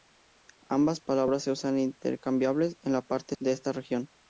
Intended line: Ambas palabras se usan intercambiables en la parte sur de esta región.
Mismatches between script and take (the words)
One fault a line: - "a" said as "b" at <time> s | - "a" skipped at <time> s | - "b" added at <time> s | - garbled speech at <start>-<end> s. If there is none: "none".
- "sur" skipped at 3.4 s